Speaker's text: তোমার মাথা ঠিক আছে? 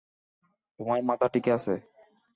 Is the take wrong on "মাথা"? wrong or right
right